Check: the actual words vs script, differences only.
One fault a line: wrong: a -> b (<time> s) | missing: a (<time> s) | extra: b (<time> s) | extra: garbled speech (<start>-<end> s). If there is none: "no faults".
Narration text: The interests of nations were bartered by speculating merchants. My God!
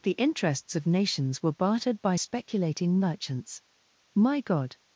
no faults